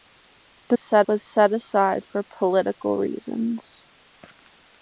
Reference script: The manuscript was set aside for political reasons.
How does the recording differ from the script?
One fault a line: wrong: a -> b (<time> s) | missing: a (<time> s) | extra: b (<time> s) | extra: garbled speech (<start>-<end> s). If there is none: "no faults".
wrong: manuscript -> set (0.8 s)